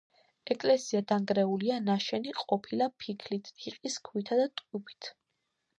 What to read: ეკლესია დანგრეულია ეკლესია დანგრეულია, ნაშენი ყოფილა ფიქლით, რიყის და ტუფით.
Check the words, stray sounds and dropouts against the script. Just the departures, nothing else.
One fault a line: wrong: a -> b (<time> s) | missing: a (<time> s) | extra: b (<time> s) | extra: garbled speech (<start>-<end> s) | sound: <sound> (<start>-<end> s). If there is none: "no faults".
missing: ეკლესია დანგრეულია (1.8 s)
extra: ქვითა (4.1 s)